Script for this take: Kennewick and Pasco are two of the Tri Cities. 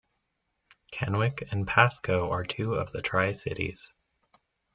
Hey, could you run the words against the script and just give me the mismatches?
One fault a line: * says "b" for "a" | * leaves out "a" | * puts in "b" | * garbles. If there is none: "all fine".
all fine